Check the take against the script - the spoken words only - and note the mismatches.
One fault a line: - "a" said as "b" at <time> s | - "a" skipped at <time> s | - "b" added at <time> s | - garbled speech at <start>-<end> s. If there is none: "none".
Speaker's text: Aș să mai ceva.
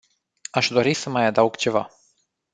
- "dori" added at 0.7 s
- "adaug" added at 1.3 s